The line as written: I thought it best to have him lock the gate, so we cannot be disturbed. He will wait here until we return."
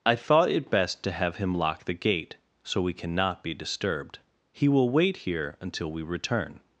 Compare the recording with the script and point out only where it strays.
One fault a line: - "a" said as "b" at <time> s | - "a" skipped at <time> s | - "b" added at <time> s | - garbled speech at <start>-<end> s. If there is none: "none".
none